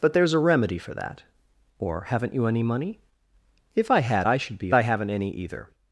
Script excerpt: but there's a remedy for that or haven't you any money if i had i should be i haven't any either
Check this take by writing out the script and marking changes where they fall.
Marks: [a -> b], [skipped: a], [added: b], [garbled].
but there's a remedy for that or haven't you any money if i had i should be i haven't any either